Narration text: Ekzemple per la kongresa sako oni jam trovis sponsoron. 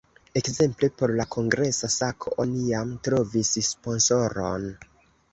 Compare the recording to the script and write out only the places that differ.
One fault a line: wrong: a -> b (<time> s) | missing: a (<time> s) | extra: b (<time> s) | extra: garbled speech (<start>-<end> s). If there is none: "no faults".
wrong: per -> por (1.0 s)